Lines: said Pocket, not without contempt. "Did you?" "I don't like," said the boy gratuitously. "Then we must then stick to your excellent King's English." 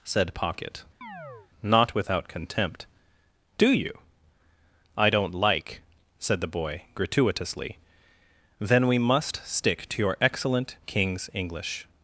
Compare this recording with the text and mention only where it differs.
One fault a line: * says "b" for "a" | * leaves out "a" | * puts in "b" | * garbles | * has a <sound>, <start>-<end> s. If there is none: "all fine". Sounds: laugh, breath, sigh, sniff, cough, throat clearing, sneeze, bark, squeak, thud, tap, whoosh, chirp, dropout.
* has a chirp, 1.0-1.5 s
* says "Do" for "Did"
* leaves out "then"